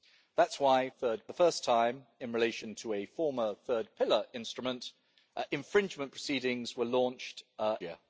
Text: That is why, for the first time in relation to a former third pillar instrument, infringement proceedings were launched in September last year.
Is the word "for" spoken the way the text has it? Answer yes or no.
no